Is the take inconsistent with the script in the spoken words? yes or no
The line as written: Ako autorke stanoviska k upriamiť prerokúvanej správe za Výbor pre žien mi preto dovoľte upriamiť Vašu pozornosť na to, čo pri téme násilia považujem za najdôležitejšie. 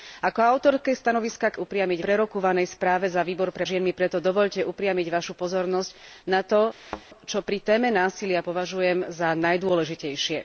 no